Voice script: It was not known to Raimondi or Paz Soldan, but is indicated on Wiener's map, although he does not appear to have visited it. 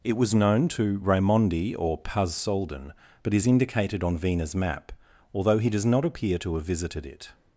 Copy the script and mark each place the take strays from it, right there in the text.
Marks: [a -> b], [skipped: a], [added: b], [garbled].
It was [skipped: not] known to Raimondi or Paz Soldan, but is indicated on Wiener's map, although he does not appear to have visited it.